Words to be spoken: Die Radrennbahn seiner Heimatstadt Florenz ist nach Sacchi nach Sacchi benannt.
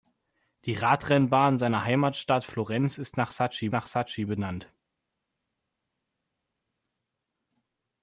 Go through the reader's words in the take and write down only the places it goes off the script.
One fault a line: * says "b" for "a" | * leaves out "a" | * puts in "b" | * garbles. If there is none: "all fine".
all fine